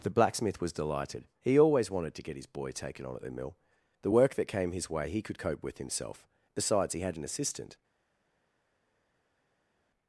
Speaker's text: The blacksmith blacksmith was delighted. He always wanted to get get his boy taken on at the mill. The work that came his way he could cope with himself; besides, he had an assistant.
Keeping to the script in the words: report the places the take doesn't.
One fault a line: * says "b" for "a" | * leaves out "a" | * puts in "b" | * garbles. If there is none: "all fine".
* leaves out "blacksmith"
* leaves out "get"